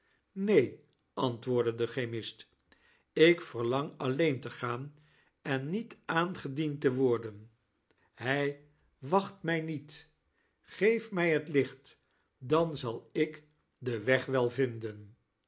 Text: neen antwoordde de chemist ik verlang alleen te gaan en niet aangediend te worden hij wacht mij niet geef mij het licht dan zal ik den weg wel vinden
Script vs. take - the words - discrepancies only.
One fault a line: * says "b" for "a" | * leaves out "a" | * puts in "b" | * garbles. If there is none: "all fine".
all fine